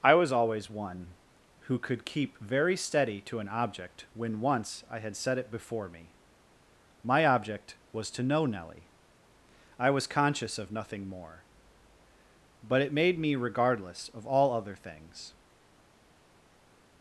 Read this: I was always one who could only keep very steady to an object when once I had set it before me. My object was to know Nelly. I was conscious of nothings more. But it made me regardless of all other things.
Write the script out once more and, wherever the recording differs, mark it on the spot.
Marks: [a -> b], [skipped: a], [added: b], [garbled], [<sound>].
I was always one who could [skipped: only] keep very steady to an object when once I had set it before me. My object was to know Nelly. I was conscious of [nothings -> nothing] more. But it made me regardless of all other things.